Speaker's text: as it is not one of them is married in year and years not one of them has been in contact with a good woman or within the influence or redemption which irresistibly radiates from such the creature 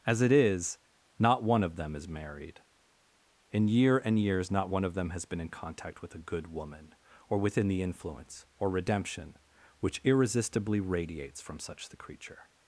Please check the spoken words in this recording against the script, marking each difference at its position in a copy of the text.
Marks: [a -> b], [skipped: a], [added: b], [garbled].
as it is not one of them is married in year and years not one of them has been in contact with a good woman or within the influence or redemption which irresistibly radiates from such the creature